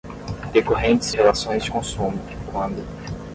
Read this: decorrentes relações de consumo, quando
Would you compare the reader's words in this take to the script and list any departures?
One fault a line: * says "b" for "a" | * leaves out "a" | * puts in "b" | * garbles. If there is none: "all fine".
all fine